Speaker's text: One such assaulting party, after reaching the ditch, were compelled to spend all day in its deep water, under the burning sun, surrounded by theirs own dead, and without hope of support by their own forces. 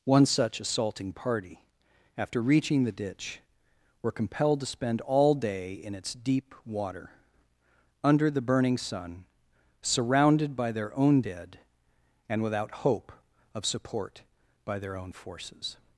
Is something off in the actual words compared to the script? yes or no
yes